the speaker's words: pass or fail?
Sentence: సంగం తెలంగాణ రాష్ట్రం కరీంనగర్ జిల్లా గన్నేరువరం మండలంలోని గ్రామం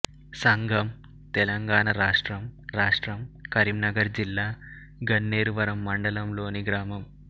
fail